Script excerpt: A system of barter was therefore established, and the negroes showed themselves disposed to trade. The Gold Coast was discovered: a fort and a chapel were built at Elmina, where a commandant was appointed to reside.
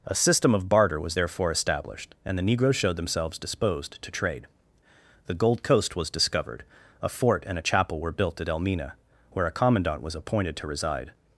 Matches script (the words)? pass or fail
pass